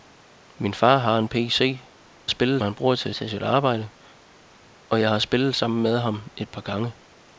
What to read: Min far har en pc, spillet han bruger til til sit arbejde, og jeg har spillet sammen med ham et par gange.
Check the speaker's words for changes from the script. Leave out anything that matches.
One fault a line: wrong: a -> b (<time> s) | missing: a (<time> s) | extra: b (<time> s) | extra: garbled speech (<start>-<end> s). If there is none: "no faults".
no faults